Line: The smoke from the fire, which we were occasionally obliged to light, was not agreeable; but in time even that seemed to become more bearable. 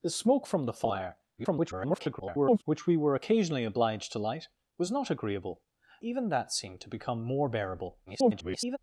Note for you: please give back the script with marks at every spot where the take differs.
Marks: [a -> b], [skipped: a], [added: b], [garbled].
The smoke from the fire, [garbled] which we were occasionally obliged to light, was not agreeable; [skipped: but in time] even that seemed to become more bearable. [garbled]